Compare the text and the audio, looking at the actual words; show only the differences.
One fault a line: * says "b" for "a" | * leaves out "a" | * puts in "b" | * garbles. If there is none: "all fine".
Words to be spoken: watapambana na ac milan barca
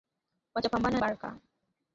* leaves out "na ac milan"